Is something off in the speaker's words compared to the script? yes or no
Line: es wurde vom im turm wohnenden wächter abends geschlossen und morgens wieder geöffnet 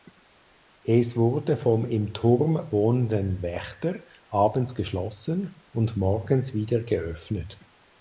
no